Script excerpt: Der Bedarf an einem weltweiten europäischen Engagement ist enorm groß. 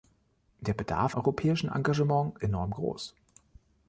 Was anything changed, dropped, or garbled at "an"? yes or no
yes